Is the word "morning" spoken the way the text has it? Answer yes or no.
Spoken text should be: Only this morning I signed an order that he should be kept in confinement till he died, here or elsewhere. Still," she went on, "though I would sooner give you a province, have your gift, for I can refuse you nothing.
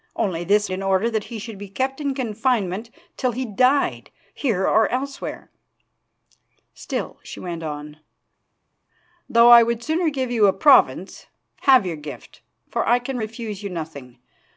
no